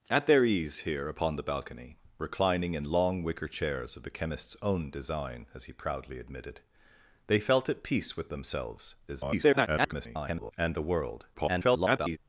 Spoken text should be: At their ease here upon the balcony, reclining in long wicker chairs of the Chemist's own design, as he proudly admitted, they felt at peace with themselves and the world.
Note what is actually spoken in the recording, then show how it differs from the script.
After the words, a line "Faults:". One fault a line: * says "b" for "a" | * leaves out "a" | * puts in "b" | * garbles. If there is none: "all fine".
At their ease here upon the balcony, reclining in long wicker chairs of the Chemist's own design, as he proudly admitted, they felt at peace with themselves [garbled] and the world. [garbled]
Faults:
* garbles
* garbles